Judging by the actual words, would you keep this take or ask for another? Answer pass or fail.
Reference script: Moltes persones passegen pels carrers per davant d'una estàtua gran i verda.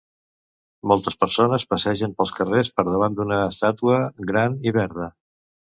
pass